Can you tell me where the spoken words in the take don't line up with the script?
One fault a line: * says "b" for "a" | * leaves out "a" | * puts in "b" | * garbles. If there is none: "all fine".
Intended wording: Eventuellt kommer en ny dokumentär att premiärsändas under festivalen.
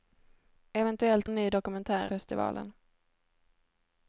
* leaves out "kommer"
* leaves out "att premiärsändas under"